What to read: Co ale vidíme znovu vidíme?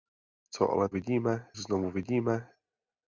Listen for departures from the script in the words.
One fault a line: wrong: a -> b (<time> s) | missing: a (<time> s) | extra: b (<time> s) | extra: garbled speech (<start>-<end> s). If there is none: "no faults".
no faults